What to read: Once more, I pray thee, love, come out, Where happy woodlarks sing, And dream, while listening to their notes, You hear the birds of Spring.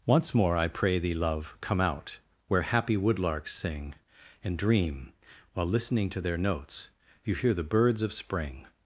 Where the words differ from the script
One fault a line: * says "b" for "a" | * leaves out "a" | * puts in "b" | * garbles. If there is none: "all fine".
all fine